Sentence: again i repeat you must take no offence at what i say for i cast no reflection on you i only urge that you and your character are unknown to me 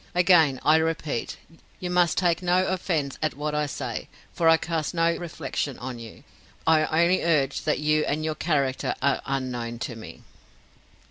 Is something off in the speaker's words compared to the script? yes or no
no